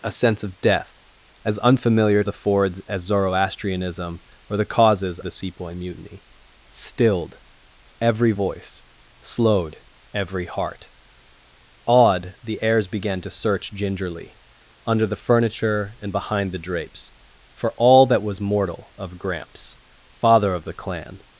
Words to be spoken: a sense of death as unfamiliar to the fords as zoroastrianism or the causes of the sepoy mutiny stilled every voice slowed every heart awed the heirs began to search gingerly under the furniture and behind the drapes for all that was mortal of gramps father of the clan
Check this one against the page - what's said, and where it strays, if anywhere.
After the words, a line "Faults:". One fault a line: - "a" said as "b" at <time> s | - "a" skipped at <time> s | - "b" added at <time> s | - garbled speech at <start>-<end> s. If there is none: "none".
a sense of death as unfamiliar the fords as zoroastrianism or the causes the sepoy mutiny stilled every voice slowed every heart awed the heirs began to search gingerly under the furniture and behind the drapes for all that was mortal of gramps father of the clan
Faults:
- "to" skipped at 2.2 s
- "of" skipped at 5.2 s